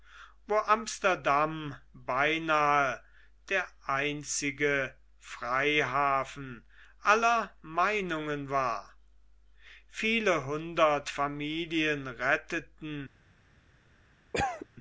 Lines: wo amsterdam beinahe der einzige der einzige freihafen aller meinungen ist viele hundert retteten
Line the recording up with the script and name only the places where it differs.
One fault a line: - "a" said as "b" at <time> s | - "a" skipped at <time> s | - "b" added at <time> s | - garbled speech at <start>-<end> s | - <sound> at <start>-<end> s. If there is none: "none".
- "der einzige" skipped at 5.0 s
- "ist" said as "war" at 8.5 s
- "familien" added at 11.1 s
- cough at 14.3-14.7 s